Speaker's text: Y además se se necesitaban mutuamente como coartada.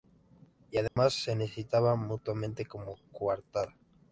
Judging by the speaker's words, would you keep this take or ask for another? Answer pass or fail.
fail